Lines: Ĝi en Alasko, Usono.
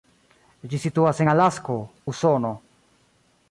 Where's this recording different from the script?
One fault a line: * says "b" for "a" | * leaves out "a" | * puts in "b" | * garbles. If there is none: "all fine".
* puts in "situas"